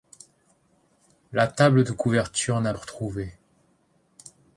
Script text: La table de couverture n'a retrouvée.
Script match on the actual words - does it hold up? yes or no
yes